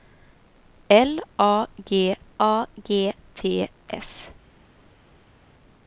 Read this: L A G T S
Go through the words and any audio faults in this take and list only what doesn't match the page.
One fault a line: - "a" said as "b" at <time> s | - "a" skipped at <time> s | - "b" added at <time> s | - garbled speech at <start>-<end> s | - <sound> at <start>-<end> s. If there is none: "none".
- "A G" added at 2.4 s